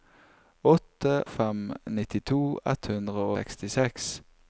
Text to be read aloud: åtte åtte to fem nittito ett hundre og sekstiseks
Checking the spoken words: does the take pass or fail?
fail